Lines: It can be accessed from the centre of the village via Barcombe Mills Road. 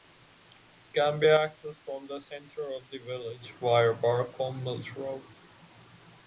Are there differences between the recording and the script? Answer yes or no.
no